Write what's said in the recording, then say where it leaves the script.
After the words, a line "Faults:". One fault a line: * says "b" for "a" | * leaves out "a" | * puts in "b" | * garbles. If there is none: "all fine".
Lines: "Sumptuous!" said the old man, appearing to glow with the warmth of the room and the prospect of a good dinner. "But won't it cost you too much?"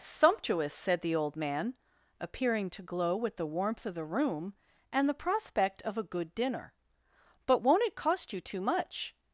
"Sumptuous!" said the old man, appearing to glow with the warmth of the room and the prospect of a good dinner. "But won't it cost you too much?"
Faults:
all fine